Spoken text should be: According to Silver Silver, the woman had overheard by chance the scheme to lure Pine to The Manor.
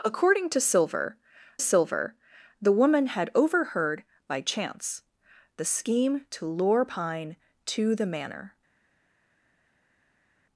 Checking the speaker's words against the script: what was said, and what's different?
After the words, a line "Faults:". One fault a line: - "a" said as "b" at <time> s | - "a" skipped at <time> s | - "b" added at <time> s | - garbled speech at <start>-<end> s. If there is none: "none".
According to Silver Silver, the woman had overheard by chance the scheme to lure Pine to The Manor.
Faults:
none